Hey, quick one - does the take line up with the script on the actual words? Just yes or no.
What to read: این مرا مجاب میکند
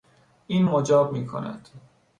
no